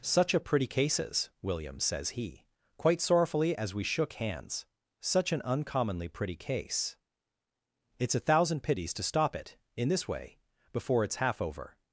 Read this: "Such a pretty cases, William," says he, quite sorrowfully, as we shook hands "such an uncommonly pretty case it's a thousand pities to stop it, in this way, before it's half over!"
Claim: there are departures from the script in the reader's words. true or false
false